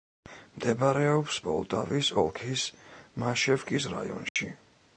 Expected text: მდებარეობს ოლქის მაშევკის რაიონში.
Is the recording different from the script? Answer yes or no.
yes